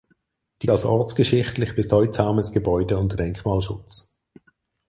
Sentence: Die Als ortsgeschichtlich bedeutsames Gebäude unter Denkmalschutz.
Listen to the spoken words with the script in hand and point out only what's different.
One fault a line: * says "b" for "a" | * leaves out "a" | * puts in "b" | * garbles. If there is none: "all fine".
all fine